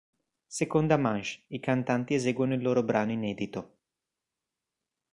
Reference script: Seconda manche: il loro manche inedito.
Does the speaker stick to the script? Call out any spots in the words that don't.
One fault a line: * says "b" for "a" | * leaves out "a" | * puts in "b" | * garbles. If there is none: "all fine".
* puts in "i cantanti eseguono"
* says "brano" for "manche"